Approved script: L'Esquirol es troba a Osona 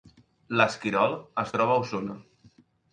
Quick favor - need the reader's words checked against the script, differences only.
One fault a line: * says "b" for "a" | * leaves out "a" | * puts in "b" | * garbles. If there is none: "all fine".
all fine